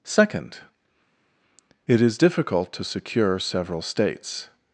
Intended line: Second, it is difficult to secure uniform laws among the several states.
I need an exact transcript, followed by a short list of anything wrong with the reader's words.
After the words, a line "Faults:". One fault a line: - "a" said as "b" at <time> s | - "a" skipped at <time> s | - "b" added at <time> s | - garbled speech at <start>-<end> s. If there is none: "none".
Second, it is difficult to secure several states.
Faults:
- "uniform laws among the" skipped at 3.4 s